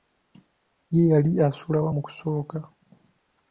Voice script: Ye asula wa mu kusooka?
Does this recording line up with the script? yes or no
no